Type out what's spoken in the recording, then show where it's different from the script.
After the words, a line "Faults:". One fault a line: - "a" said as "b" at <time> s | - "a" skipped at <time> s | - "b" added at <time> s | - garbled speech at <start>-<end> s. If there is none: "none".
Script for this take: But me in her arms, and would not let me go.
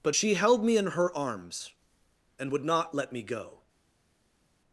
But she held me in her arms, and would not let me go.
Faults:
- "she held" added at 0.1 s